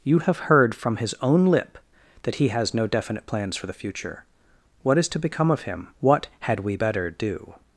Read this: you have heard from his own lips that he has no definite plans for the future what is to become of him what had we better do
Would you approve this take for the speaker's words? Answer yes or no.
no